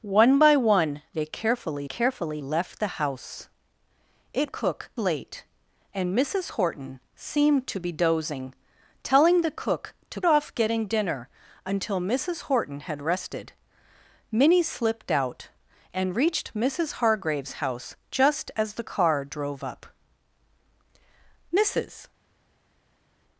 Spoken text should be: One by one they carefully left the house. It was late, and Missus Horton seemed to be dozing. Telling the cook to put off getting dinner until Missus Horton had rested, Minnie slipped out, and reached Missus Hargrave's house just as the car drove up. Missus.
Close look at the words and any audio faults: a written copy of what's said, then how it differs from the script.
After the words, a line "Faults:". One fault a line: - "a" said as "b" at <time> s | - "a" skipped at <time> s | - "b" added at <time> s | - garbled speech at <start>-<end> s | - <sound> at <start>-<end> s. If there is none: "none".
One by one they carefully carefully left the house. It cook late, and Missus Horton seemed to be dozing. Telling the cook to off getting dinner until Missus Horton had rested, Minnie slipped out, and reached Missus Hargrave's house just as the car drove up. Missus.
Faults:
- "carefully" added at 1.8 s
- "was" said as "cook" at 4.5 s
- "put" skipped at 10.2 s